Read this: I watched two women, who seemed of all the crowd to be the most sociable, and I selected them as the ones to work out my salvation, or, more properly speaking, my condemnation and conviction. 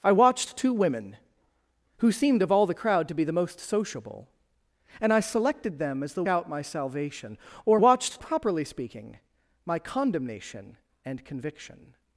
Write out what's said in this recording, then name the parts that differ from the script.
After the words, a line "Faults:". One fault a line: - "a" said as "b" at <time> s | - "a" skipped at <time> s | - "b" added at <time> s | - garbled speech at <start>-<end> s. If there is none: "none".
I watched two women, who seemed of all the crowd to be the most sociable, and I selected them as the out my salvation, or, watched properly speaking, my condemnation and conviction.
Faults:
- "ones to work" skipped at 6.2 s
- "more" said as "watched" at 7.8 s